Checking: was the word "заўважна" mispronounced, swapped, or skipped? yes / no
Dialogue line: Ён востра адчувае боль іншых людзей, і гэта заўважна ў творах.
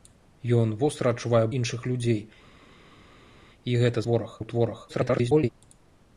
yes